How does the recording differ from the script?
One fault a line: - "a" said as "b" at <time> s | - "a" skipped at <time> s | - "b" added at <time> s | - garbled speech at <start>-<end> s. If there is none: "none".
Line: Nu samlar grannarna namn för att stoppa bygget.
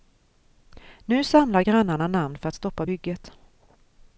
none